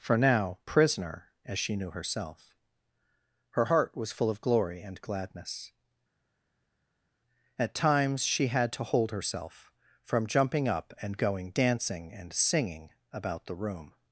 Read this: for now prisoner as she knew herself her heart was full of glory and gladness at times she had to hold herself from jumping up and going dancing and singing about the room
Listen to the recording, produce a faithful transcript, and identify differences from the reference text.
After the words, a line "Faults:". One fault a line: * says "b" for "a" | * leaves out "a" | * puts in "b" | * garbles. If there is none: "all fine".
for now prisoner as she knew herself her heart was full of glory and gladness at times she had to hold herself from jumping up and going dancing and singing about the room
Faults:
all fine